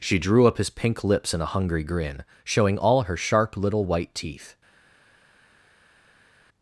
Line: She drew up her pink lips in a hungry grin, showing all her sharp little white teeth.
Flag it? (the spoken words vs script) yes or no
yes